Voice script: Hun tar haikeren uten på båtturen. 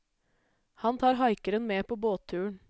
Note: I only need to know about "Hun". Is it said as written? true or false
false